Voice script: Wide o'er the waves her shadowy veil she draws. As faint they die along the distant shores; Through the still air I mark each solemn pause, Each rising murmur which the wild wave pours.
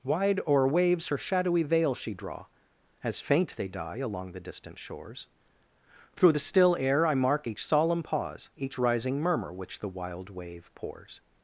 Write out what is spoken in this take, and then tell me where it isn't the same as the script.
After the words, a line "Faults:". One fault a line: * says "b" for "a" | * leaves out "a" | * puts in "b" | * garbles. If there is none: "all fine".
Wide o'er waves her shadowy veil she draw. As faint they die along the distant shores; Through the still air I mark each solemn pause, Each rising murmur which the wild wave pours.
Faults:
* leaves out "the"
* says "draw" for "draws"